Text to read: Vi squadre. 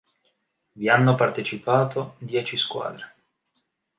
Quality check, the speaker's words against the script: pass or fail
fail